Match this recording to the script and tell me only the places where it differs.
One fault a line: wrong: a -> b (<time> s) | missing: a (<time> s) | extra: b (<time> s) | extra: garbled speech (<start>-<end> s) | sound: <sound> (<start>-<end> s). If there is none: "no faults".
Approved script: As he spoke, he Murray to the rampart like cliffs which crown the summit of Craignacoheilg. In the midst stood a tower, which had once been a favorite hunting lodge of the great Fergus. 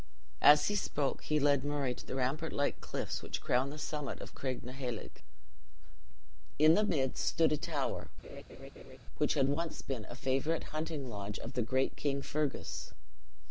extra: led (1.4 s)
sound: laugh (8.2-9.0 s)
extra: King (12.0 s)